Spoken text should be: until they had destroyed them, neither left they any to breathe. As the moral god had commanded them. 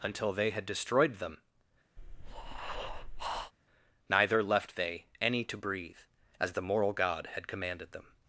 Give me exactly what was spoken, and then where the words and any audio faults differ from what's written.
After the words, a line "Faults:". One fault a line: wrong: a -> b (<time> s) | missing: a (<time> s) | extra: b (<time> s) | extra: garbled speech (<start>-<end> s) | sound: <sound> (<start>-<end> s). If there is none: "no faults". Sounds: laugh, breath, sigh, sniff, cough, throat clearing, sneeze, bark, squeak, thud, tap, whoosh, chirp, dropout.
until they had destroyed them, neither left they any to breathe. As the moral god had commanded them.
Faults:
sound: breath (2.0-3.5 s)